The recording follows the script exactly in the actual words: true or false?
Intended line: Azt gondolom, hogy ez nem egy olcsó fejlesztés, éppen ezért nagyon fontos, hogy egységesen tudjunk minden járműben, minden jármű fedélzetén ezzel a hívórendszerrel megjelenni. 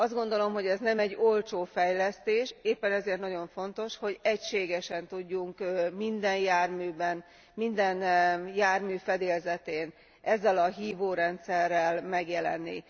true